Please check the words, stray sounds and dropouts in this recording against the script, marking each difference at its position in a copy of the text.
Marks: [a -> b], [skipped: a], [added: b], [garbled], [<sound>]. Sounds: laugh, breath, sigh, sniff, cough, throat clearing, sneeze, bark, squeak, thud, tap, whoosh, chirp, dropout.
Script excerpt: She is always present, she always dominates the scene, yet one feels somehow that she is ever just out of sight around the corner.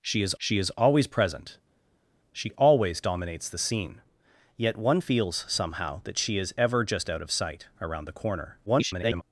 She is [added: she is] always present, she always dominates the scene, yet one feels somehow that she is ever just out of sight around the corner. [garbled]